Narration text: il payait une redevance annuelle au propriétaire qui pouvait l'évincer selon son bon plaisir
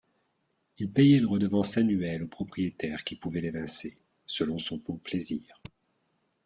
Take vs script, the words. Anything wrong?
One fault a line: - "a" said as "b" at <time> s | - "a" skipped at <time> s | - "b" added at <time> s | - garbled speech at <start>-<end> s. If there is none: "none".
none